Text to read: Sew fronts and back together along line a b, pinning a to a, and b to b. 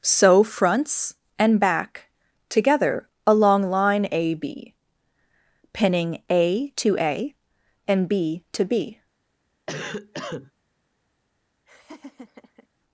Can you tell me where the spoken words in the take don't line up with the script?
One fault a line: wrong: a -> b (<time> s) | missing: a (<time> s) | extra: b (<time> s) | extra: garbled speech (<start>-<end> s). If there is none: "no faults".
no faults